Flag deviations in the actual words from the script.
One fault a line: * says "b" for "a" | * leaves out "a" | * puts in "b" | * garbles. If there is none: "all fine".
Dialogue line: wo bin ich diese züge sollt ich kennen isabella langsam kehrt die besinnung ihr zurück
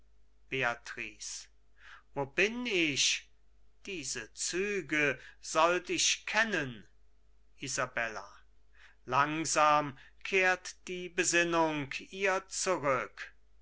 all fine